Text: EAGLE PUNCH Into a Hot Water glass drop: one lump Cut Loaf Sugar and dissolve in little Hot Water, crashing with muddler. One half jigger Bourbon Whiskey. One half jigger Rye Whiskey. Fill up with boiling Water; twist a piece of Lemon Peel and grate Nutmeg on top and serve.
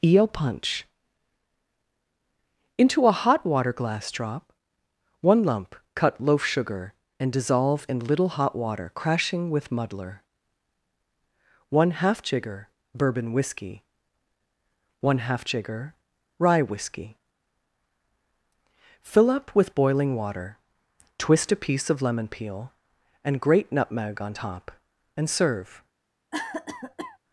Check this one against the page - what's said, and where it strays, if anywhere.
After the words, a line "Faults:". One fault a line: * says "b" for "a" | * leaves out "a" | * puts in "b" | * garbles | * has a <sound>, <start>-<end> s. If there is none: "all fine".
Eel PUNCH Into a Hot Water glass drop: one lump Cut Loaf Sugar and dissolve in little Hot Water, crashing with muddler. One half jigger Bourbon Whiskey. One half jigger Rye Whiskey. Fill up with boiling Water; twist a piece of Lemon Peel and grate Nutmeg on top and serve.
Faults:
* says "Eel" for "EAGLE"
* has a cough, 26.3-27.2 s